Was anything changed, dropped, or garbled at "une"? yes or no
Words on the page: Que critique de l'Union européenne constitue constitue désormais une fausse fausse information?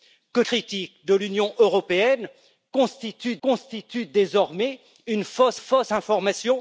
no